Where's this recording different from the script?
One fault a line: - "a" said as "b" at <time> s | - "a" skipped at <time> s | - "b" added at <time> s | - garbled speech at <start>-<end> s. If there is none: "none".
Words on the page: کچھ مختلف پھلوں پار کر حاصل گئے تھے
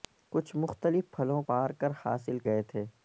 none